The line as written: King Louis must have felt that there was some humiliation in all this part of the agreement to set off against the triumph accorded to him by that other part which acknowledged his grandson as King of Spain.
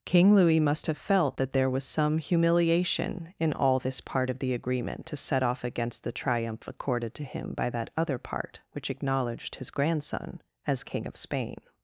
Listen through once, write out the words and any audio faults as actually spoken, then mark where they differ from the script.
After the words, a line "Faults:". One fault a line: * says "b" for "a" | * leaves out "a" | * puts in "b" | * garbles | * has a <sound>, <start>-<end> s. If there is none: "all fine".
King Louis must have felt that there was some humiliation in all this part of the agreement to set off against the triumph accorded to him by that other part which acknowledged his grandson as King of Spain.
Faults:
all fine